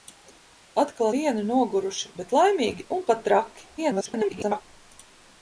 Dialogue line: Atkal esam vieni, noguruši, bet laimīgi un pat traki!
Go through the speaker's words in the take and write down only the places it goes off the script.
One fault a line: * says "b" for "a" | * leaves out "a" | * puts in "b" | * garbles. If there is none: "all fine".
* leaves out "esam"
* garbles